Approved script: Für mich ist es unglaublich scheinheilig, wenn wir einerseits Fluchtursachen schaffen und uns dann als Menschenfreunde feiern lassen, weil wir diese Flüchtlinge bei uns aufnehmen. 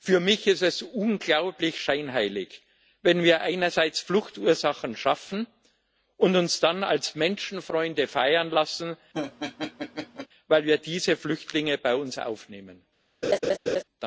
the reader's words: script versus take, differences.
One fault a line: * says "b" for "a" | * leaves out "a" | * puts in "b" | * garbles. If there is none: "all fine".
all fine